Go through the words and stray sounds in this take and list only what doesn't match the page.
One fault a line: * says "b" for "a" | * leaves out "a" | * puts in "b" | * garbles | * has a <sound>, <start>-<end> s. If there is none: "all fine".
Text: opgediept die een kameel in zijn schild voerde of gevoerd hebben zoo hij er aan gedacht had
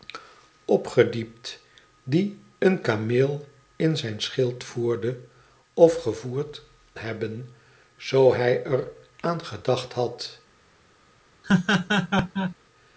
* has a laugh, 11.4-12.5 s